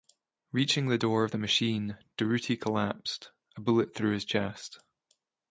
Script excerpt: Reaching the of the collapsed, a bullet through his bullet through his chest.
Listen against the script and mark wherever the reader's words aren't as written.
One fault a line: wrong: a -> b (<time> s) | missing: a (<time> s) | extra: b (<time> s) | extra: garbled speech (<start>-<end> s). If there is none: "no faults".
extra: door (0.9 s)
extra: machine Durruti (1.4 s)
missing: bullet through his (4.3 s)